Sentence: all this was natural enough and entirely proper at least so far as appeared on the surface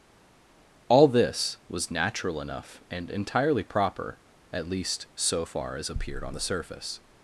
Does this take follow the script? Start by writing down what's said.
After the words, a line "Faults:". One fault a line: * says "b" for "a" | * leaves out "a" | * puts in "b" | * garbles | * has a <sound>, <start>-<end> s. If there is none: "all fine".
all this was natural enough and entirely proper at least so far as appeared on the surface
Faults:
all fine